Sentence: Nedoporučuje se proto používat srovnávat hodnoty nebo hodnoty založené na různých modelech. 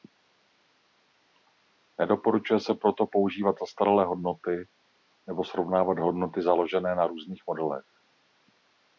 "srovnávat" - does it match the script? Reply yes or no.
no